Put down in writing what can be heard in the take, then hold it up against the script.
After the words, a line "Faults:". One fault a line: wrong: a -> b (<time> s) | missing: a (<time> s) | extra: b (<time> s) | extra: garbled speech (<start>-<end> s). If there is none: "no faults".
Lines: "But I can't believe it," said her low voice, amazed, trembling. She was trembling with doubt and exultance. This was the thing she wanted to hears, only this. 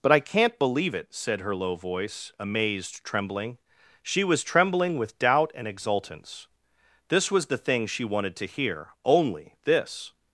"But I can't believe it," said her low voice, amazed, trembling. She was trembling with doubt and exultance. This was the thing she wanted to hear, only this.
Faults:
wrong: hears -> hear (8.5 s)